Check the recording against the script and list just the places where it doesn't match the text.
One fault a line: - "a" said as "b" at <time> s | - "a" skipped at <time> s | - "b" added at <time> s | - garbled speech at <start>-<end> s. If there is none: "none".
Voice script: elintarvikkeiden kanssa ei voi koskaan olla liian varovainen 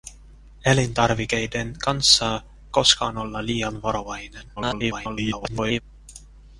- "ei voi" skipped at 2.4 s
- garbled speech at 4.6-5.8 s